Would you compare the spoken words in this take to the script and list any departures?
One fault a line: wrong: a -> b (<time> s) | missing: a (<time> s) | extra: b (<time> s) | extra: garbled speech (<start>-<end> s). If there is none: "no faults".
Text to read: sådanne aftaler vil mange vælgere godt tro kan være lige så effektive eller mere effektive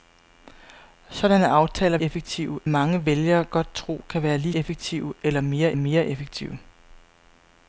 wrong: vil -> effektive (2.0 s)
missing: så (4.5 s)
extra: mere (5.7 s)